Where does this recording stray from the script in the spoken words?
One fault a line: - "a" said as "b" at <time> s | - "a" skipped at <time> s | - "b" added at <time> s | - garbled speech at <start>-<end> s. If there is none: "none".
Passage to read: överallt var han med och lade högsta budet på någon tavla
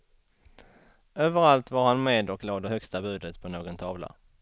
none